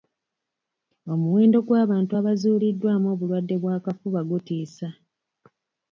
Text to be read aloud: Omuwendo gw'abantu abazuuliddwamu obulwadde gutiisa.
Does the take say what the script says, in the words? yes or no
no